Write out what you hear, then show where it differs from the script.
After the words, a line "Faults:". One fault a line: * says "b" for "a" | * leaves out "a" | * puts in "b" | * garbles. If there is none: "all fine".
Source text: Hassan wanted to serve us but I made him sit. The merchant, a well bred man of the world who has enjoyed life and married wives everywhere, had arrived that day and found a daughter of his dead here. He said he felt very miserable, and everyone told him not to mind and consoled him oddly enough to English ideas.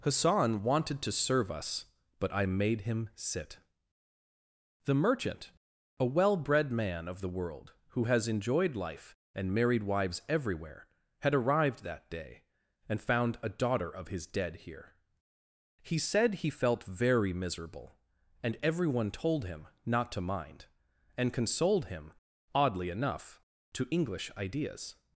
Hassan wanted to serve us but I made him sit. The merchant, a well bred man of the world who has enjoyed life and married wives everywhere, had arrived that day and found a daughter of his dead here. He said he felt very miserable, and everyone told him not to mind and consoled him oddly enough to English ideas.
Faults:
all fine